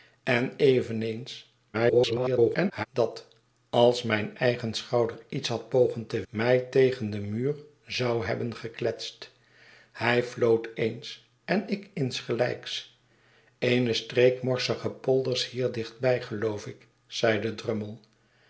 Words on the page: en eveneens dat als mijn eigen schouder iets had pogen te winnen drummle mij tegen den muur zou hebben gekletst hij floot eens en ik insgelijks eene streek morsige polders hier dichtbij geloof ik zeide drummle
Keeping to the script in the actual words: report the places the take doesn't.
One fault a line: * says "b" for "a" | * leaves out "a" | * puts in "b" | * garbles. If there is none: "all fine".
* garbles
* leaves out "winnen drummle"